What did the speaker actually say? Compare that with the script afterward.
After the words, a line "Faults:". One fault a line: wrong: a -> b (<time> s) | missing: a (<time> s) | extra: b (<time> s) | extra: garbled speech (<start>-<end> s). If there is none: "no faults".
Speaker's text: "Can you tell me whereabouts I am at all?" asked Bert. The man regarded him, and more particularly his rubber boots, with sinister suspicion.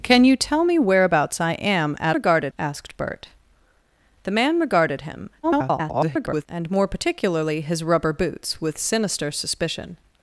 "Can you tell me whereabouts I am at regarded?" asked Bert. The man regarded him, [garbled] and more particularly his rubber boots, with sinister suspicion.
Faults:
wrong: all -> regarded (2.1 s)
extra: garbled speech (5.4-6.5 s)